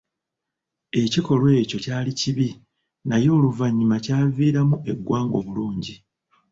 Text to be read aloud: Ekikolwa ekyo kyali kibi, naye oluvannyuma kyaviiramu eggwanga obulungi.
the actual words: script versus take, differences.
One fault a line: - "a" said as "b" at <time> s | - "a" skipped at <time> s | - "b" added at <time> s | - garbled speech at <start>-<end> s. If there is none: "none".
none